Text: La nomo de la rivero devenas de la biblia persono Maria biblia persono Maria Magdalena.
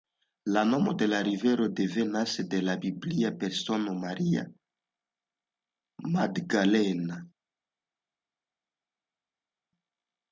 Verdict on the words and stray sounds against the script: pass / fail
fail